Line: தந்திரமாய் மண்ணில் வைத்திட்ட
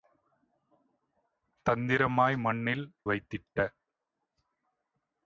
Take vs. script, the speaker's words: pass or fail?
pass